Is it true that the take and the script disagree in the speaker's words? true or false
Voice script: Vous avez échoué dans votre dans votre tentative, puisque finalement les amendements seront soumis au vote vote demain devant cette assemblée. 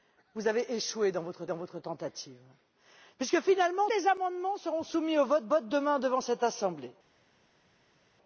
false